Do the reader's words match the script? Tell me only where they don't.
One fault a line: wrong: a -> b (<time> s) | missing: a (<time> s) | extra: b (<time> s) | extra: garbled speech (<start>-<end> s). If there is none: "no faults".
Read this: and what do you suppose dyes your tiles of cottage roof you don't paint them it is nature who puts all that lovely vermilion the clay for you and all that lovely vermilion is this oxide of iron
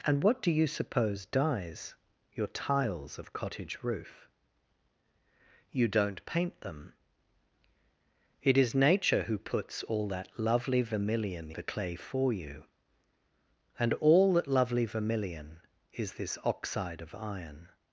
no faults